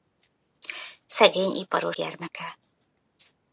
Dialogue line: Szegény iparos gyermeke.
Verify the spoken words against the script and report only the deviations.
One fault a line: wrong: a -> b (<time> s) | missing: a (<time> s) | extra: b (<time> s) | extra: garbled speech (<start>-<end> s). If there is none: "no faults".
no faults